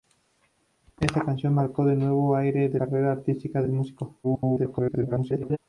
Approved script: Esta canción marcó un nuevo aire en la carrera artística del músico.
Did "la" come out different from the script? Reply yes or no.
yes